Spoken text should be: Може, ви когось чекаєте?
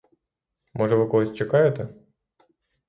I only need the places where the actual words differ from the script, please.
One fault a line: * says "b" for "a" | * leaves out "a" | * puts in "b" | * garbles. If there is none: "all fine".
all fine